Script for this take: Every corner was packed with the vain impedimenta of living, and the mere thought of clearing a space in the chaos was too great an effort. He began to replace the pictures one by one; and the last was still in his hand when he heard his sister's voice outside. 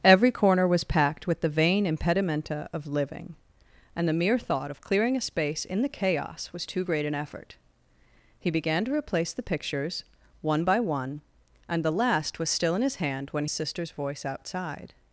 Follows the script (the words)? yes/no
no